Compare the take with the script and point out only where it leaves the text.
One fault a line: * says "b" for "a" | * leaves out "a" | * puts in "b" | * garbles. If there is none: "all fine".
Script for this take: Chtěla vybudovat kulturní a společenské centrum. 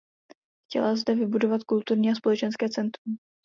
* puts in "zde"